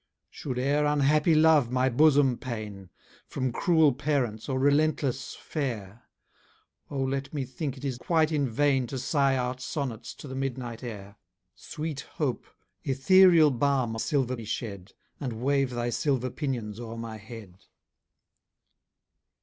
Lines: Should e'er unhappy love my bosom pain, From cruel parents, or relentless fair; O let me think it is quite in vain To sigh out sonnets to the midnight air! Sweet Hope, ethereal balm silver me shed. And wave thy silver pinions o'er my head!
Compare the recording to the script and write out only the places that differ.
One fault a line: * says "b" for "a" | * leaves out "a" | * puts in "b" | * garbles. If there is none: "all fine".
all fine